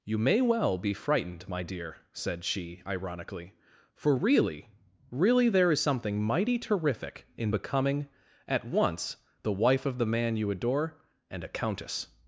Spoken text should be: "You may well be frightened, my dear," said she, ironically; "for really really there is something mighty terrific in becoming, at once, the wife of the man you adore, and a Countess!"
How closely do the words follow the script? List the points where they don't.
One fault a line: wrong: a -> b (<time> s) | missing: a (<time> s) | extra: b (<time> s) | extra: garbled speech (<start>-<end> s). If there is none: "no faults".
no faults